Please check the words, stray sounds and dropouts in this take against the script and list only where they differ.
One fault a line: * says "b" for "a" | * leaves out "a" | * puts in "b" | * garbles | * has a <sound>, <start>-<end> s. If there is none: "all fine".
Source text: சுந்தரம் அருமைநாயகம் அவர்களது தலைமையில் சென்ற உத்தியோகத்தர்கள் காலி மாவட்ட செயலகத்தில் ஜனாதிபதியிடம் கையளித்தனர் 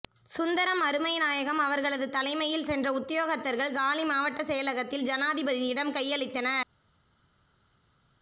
all fine